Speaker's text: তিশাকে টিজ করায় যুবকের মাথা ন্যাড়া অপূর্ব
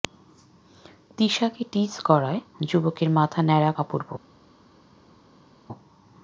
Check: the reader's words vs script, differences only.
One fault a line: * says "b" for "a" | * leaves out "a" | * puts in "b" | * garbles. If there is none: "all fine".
all fine